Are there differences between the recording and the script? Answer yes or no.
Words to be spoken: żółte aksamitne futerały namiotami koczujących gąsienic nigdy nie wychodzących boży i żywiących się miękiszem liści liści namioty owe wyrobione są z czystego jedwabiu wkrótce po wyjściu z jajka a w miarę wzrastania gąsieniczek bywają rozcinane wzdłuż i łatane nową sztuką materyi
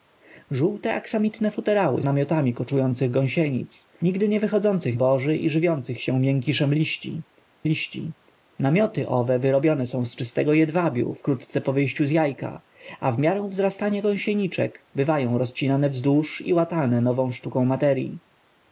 no